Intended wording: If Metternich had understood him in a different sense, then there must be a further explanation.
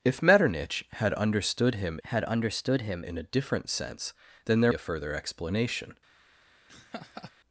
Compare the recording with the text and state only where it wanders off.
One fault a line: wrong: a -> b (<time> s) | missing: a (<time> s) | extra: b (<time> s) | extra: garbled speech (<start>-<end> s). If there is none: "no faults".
extra: had understood him (2.0 s)
missing: must be (4.7 s)